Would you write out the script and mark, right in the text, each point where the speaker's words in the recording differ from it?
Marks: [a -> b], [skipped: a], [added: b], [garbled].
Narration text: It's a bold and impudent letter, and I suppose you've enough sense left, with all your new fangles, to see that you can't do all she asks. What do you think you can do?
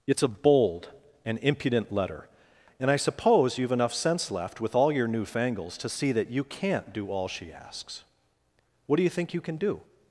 It's a bold and impudent letter, and I suppose you've enough sense left, with all your new fangles, to see that you can't do all she asks. What do you think you can do?